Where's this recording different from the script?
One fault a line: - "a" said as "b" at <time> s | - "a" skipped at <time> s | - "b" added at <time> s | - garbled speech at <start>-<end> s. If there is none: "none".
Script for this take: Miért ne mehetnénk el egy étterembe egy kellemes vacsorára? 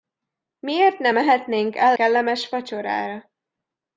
- "egy étterembe egy" skipped at 2.0 s